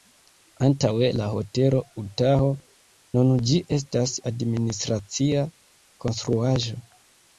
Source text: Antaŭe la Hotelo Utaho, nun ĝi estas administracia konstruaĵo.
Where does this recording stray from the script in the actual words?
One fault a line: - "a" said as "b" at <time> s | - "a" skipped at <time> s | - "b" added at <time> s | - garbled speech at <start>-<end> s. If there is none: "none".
none